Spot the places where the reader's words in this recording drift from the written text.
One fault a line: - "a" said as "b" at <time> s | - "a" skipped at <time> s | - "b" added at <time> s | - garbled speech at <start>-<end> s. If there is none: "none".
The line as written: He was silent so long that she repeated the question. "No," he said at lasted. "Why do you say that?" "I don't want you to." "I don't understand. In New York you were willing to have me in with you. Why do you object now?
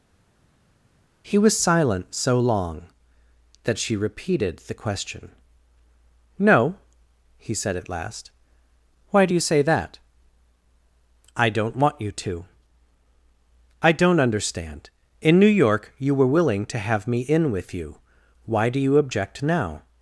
- "lasted" said as "last" at 7.9 s